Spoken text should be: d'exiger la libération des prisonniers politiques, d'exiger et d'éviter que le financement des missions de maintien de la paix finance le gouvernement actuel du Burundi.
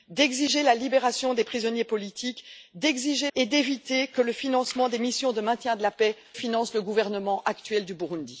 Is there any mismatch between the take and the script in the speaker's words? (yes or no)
no